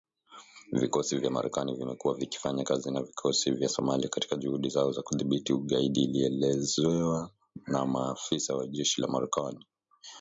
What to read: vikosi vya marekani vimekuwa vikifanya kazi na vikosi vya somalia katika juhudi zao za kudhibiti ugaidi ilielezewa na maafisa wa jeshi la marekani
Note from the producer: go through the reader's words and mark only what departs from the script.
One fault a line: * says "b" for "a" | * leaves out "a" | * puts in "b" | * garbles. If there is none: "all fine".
all fine